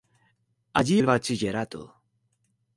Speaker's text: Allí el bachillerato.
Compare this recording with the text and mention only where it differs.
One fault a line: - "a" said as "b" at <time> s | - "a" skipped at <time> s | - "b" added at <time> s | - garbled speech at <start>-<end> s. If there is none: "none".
none